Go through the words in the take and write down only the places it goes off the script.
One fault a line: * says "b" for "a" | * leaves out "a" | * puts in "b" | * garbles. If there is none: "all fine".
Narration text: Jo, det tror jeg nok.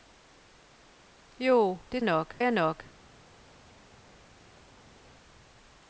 * says "nok" for "tror"